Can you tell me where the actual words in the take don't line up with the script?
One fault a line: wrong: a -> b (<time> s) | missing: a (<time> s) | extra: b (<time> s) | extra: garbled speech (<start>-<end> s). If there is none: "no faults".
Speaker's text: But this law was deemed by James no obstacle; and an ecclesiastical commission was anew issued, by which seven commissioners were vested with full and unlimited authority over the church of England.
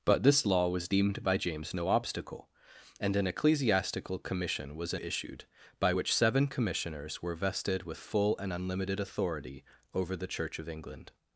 missing: anew (5.0 s)